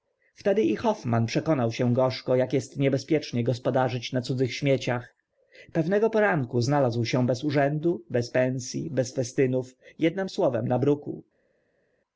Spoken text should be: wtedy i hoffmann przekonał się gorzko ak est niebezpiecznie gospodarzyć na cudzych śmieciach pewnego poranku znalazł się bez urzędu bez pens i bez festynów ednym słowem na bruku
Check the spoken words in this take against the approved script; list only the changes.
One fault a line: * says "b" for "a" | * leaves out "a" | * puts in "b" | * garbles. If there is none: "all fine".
all fine